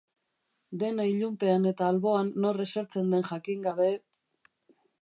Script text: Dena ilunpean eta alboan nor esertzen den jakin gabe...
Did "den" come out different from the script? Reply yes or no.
no